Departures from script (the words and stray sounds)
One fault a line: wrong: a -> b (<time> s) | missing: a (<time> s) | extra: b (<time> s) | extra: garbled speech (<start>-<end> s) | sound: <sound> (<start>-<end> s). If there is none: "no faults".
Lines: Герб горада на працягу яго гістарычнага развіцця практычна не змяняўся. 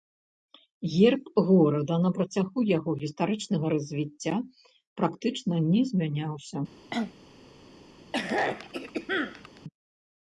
sound: cough (6.9-7.1 s)
sound: throat clearing (8.1-9.6 s)